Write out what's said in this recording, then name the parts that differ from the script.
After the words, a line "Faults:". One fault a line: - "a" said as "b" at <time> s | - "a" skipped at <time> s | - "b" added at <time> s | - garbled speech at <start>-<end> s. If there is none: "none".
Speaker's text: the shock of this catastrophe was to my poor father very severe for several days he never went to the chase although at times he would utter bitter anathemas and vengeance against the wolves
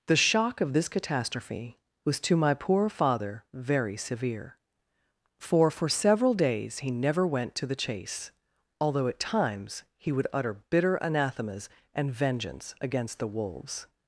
the shock of this catastrophe was to my poor father very severe for for several days he never went to the chase although at times he would utter bitter anathemas and vengeance against the wolves
Faults:
- "for" added at 5.7 s